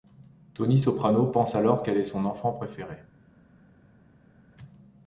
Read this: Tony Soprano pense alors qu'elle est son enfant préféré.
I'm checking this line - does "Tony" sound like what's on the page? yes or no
yes